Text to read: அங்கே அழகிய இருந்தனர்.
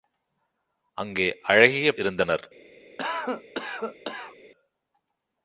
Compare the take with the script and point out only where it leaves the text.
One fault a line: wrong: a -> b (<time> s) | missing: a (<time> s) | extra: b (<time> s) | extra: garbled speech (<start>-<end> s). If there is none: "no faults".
no faults